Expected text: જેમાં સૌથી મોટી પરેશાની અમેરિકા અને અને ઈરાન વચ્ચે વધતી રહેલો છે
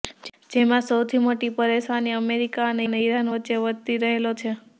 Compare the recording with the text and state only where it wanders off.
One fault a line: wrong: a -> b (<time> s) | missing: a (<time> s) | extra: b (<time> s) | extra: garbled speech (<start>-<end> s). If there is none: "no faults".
no faults